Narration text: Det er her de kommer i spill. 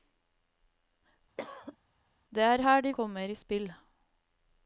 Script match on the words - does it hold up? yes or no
yes